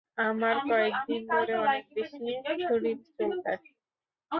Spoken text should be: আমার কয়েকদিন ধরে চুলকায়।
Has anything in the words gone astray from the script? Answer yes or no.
yes